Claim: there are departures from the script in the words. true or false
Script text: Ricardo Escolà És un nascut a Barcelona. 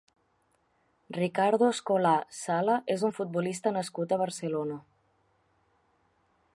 true